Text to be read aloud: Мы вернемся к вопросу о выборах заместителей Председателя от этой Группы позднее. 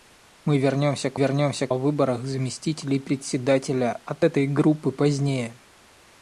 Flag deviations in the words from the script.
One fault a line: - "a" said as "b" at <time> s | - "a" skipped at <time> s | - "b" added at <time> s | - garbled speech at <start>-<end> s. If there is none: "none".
- "вопросу" said as "вернемся" at 1.1 s